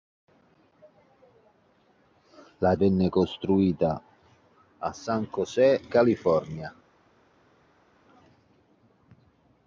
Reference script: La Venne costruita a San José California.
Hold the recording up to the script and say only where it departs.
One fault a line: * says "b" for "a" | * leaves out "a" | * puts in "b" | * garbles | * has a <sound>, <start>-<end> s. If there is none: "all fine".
all fine